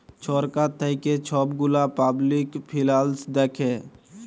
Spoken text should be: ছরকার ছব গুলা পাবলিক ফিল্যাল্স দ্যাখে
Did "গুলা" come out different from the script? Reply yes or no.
no